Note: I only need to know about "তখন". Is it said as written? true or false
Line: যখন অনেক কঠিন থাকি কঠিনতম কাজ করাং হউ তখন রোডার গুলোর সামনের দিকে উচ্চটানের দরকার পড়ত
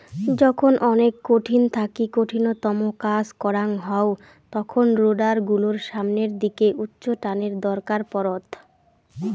true